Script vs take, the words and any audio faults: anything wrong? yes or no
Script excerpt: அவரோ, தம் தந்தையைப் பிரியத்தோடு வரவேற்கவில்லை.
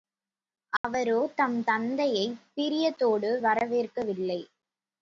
yes